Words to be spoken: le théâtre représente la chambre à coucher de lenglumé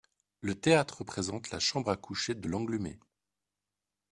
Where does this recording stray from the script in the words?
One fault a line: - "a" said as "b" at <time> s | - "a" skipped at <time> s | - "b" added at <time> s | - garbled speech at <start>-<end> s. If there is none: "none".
none